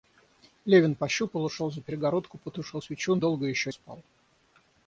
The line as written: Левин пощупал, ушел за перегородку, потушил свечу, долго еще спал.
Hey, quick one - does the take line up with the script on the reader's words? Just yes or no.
yes